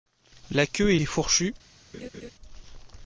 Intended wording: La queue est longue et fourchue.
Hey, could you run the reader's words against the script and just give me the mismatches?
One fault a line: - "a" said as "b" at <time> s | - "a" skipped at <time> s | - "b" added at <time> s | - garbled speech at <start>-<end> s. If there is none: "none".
- "longue" skipped at 1.0 s